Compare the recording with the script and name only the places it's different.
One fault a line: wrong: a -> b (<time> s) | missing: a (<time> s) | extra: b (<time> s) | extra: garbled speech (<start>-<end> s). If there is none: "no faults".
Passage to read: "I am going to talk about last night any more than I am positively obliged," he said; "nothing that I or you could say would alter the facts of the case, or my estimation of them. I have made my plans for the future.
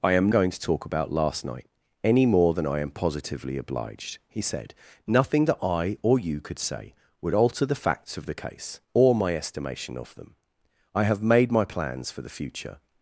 no faults